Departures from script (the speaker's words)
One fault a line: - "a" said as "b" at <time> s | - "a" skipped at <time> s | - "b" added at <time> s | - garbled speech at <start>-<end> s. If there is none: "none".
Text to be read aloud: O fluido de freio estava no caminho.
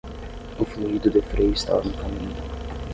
none